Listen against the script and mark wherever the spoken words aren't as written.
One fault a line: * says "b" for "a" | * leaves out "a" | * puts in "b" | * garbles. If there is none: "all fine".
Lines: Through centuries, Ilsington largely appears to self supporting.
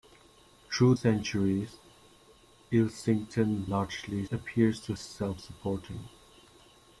all fine